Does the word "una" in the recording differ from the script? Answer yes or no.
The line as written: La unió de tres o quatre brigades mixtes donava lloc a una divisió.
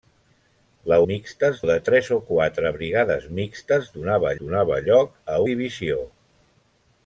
yes